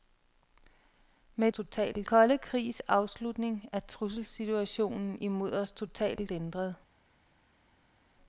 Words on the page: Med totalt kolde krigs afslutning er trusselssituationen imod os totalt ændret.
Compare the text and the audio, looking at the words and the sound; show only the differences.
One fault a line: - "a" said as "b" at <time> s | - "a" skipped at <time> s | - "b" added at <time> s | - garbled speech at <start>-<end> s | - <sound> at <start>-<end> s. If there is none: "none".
none